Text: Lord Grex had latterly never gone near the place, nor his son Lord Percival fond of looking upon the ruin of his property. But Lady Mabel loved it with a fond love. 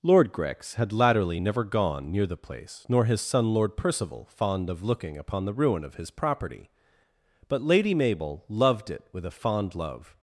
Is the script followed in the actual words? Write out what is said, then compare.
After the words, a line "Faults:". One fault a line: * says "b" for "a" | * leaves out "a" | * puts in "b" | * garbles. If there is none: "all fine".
Lord Grex had latterly never gone near the place, nor his son Lord Percival fond of looking upon the ruin of his property. But Lady Mabel loved it with a fond love.
Faults:
all fine